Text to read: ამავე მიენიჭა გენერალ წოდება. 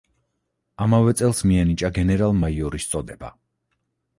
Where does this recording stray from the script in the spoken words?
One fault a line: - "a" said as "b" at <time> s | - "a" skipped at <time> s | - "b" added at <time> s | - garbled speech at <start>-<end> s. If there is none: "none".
- "წელს" added at 1.2 s
- "მაიორის" added at 2.4 s